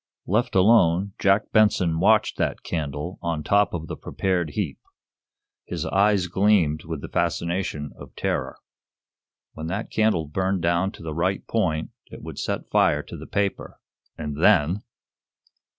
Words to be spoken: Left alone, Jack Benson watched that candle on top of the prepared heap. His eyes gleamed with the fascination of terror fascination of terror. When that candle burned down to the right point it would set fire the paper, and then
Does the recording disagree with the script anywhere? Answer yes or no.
yes